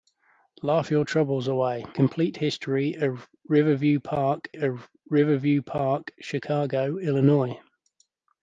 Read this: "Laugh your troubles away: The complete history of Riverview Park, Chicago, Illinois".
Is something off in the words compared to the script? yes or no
yes